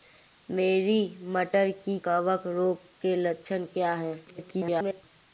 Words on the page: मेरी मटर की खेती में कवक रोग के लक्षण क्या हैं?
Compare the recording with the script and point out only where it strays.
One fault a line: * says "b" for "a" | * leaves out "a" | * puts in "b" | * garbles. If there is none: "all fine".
* leaves out "खेती में"
* garbles